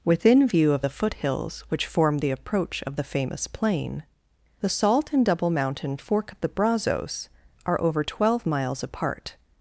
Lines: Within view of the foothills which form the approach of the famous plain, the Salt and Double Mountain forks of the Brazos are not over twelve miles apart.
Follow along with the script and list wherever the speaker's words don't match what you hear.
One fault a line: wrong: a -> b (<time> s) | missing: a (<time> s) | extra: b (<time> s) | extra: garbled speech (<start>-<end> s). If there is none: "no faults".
wrong: forks -> fork (6.0 s)
missing: not (7.8 s)